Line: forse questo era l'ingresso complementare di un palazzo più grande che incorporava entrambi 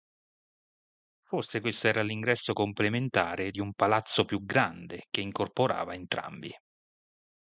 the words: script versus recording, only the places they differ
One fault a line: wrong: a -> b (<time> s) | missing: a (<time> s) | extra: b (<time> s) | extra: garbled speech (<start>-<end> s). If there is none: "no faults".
no faults